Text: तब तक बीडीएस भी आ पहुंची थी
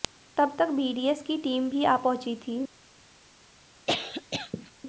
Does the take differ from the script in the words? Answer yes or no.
yes